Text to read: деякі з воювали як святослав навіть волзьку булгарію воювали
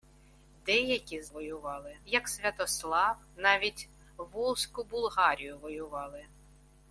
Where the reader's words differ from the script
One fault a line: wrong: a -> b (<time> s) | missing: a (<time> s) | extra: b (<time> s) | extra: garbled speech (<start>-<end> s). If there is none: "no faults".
no faults